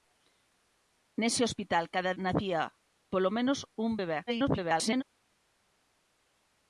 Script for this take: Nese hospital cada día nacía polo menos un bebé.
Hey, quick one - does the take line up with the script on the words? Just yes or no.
no